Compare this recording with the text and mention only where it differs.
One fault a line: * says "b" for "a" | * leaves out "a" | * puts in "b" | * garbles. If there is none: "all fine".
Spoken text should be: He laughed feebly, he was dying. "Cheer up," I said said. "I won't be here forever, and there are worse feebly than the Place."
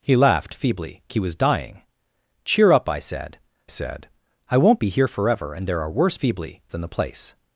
all fine